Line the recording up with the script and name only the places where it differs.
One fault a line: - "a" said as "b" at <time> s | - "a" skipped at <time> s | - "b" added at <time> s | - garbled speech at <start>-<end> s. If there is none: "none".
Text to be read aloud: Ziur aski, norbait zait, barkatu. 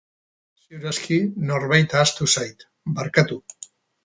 - "ahaztu" added at 2.0 s